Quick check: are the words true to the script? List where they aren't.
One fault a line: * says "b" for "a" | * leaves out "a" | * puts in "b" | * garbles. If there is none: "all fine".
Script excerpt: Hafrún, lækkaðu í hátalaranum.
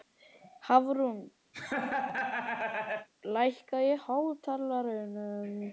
all fine